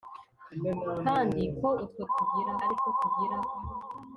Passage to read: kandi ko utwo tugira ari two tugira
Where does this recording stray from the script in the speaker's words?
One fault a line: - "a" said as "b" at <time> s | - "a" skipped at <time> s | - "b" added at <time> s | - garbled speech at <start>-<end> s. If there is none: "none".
none